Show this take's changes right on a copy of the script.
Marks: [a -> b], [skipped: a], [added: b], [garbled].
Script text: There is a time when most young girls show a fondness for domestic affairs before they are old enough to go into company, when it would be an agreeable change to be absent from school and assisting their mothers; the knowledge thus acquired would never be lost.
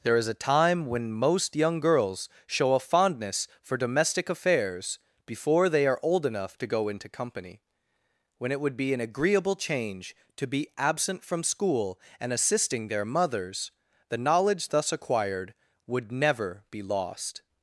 There is a time when most young girls show a fondness for domestic affairs before they are old enough to go into company, when it would be an agreeable change to be absent from school and assisting their mothers; the knowledge thus acquired would never be lost.